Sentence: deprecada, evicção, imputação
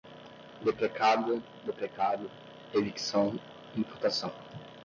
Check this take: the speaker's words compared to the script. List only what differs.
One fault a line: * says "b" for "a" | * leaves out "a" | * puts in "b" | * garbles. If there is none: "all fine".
* puts in "deprecado"